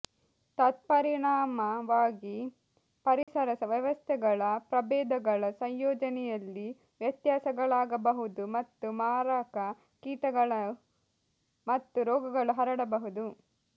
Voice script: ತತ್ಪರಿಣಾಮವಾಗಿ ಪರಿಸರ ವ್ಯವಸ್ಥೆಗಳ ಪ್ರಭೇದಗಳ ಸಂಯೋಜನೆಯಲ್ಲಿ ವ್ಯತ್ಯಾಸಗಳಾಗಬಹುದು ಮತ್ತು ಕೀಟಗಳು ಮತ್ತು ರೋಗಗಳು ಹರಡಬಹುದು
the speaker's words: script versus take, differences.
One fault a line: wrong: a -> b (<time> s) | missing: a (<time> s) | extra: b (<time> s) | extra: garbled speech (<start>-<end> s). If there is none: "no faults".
extra: ಮಾರಕ (9.0 s)